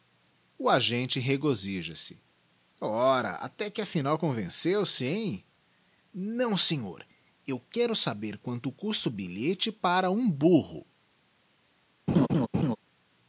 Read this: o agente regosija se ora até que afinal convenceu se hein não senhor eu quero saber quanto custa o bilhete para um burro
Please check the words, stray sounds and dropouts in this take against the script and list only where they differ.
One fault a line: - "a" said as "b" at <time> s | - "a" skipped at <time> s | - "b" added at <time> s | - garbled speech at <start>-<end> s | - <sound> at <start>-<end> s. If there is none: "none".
- laugh at 12.1-12.8 s